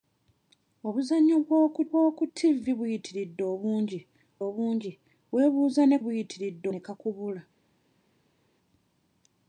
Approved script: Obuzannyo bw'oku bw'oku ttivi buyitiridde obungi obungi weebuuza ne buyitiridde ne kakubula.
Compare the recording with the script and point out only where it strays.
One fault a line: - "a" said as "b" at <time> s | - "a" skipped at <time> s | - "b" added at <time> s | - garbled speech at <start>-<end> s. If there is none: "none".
none